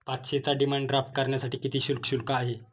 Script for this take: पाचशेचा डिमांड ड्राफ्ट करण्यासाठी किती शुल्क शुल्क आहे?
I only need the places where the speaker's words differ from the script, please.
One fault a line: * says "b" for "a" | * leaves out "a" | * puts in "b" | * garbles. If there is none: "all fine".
all fine